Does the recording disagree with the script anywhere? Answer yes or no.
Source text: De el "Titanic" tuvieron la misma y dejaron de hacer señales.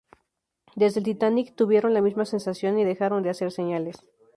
yes